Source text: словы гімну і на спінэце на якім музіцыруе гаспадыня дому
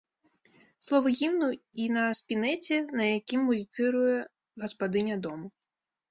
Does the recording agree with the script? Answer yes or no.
yes